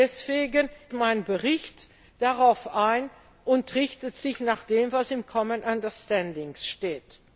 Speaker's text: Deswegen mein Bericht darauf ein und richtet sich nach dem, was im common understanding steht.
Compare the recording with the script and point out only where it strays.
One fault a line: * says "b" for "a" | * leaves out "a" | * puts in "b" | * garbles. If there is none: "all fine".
all fine